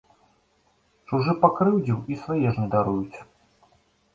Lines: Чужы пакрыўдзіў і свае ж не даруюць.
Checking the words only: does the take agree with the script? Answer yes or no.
yes